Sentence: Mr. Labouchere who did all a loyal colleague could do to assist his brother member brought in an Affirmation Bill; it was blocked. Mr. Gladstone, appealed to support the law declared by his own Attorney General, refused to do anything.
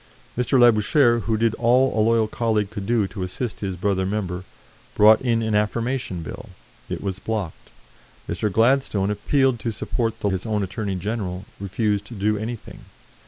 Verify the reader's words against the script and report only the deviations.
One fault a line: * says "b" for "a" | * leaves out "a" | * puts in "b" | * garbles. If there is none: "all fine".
* leaves out "law declared by"